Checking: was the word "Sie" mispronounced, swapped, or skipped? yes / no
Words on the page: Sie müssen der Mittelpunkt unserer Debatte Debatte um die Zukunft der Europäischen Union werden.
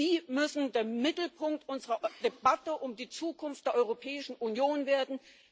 no